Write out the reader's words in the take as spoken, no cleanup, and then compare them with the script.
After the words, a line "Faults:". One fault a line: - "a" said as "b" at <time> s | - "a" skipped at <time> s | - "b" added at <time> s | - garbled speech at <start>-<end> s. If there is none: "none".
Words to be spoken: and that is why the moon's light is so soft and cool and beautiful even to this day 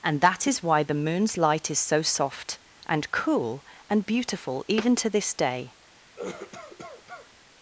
and that is why the moon's light is so soft and cool and beautiful even to this day
Faults:
none